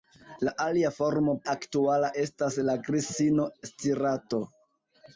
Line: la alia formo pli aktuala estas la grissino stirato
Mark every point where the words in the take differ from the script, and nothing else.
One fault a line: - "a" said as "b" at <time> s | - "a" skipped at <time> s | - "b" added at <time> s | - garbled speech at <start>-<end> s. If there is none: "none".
- "pli" skipped at 1.3 s